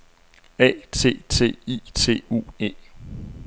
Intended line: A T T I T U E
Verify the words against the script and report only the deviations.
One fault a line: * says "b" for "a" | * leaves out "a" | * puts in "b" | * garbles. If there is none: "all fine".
all fine